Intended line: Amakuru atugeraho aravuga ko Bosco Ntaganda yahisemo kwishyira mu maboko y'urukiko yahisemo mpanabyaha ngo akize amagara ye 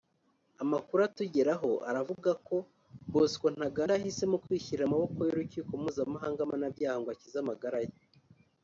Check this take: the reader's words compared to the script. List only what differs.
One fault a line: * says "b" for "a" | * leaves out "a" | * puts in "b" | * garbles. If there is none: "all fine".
* says "mpuzamahanga" for "yahisemo"